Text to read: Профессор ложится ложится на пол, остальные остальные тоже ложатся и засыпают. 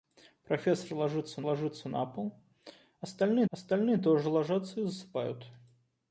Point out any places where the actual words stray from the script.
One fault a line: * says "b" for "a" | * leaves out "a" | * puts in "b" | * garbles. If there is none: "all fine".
all fine